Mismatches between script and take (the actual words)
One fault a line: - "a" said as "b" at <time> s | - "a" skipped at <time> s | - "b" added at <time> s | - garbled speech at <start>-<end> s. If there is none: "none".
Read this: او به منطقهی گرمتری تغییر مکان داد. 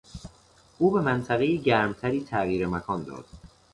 none